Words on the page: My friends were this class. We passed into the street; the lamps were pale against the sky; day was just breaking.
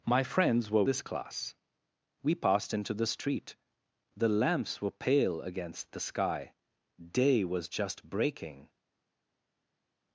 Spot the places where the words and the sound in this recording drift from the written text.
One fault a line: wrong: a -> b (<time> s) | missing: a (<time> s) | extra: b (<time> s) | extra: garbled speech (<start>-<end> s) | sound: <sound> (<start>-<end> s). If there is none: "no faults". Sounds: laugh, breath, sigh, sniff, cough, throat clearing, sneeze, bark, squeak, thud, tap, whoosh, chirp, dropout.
no faults